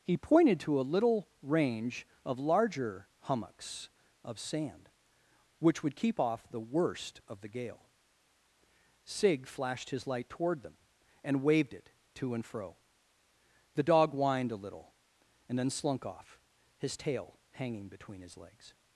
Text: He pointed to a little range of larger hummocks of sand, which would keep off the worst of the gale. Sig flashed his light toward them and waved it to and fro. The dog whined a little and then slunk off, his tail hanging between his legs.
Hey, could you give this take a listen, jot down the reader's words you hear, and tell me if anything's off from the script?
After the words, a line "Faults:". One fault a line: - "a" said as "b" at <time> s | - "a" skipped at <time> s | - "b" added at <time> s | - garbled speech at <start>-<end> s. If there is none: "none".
He pointed to a little range of larger hummocks of sand, which would keep off the worst of the gale. Sig flashed his light toward them and waved it to and fro. The dog whined a little and then slunk off, his tail hanging between his legs.
Faults:
none